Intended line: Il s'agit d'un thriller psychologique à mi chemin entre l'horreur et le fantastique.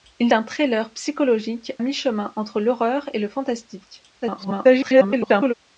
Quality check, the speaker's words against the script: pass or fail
fail